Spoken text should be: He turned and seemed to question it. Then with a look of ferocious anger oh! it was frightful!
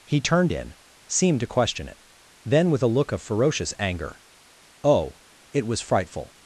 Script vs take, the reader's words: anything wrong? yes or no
yes